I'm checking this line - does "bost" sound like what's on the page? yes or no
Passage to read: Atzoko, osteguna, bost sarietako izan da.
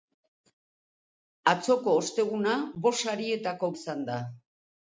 yes